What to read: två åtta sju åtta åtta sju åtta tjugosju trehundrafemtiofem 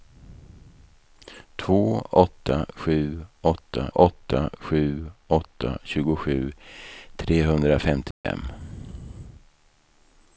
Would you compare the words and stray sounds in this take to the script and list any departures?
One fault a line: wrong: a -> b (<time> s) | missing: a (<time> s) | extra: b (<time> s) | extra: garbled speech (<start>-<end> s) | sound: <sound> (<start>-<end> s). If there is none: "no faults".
sound: dropout (8.1-8.2 s)